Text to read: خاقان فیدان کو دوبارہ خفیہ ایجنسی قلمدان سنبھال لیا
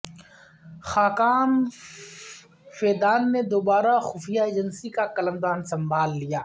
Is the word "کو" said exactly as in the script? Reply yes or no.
no